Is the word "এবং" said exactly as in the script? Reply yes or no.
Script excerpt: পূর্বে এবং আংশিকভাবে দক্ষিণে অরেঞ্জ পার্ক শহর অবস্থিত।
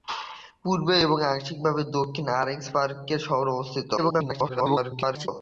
yes